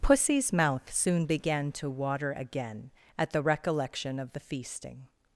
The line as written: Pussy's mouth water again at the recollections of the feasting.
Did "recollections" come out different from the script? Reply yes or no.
yes